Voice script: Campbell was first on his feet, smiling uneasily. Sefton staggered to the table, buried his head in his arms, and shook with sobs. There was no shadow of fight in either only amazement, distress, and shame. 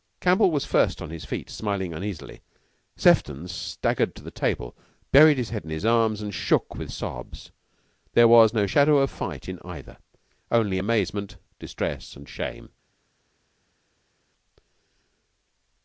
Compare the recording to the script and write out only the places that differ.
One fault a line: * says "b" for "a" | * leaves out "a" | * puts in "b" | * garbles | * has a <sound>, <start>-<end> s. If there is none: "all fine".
all fine